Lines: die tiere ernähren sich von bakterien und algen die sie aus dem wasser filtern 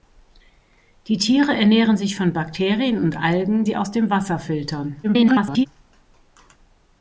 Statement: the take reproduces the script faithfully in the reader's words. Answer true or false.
false